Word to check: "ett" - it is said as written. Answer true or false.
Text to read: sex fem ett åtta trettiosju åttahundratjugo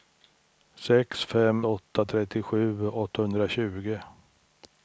false